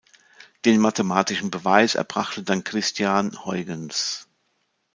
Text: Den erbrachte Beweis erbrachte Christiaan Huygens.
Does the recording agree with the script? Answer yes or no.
no